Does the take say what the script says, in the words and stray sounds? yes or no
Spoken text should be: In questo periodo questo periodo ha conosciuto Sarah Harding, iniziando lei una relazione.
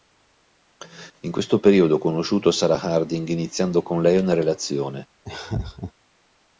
no